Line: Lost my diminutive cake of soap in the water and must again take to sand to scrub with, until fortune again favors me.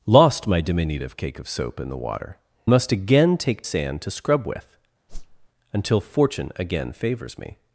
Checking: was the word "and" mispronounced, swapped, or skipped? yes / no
yes